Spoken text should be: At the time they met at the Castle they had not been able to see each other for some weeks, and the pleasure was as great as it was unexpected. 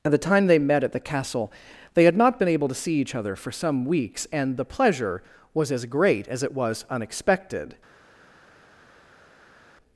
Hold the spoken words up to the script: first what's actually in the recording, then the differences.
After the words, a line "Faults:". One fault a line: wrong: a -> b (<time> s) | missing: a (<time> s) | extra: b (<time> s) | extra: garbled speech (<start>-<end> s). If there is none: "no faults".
At the time they met at the Castle they had not been able to see each other for some weeks, and the pleasure was as great as it was unexpected.
Faults:
no faults